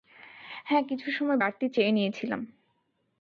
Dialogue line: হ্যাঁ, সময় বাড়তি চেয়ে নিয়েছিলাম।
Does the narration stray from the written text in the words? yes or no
yes